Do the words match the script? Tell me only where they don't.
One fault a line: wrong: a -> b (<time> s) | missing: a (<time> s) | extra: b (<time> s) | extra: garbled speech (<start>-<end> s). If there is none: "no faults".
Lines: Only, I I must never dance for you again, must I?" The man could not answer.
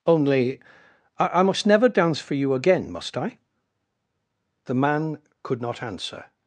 no faults